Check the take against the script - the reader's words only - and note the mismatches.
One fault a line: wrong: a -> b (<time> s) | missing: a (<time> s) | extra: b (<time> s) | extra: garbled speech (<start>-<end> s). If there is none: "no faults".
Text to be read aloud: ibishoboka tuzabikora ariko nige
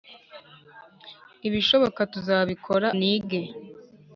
missing: ariko (2.9 s)